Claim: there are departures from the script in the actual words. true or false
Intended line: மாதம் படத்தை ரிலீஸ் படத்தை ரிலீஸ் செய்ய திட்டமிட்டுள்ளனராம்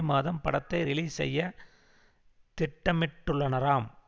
true